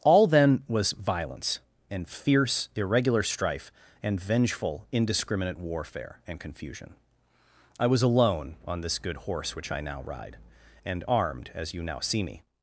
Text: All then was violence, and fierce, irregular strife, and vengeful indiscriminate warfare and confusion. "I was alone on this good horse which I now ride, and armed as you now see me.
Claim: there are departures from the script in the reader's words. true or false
false